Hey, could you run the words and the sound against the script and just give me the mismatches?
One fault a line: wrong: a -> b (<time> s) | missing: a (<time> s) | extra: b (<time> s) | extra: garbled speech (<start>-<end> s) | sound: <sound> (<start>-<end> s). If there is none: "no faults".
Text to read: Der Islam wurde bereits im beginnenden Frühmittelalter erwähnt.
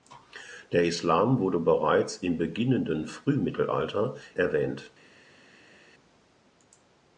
no faults